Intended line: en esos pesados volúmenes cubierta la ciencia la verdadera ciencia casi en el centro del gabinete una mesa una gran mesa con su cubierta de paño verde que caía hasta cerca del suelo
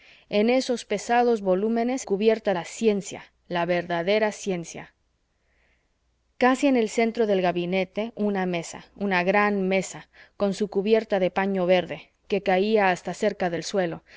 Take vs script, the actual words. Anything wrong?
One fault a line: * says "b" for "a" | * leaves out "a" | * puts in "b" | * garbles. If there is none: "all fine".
all fine